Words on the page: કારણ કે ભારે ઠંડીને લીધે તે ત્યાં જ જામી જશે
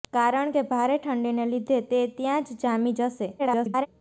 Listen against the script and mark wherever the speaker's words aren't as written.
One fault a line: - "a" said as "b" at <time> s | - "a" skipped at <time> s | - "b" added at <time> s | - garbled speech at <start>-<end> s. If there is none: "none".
- garbled speech at 3.4-3.9 s